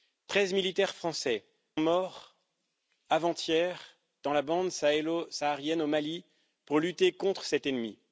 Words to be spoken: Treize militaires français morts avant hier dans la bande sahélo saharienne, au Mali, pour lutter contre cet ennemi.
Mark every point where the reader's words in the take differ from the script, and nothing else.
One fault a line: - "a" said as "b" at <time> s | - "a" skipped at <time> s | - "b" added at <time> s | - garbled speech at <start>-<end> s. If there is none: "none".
none